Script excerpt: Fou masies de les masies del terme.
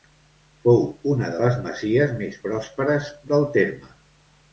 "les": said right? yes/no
yes